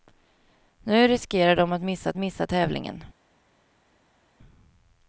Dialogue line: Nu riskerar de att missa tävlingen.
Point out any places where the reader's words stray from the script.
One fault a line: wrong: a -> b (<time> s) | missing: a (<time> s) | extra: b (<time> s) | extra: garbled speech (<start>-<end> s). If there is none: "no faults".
extra: missa (2.2 s)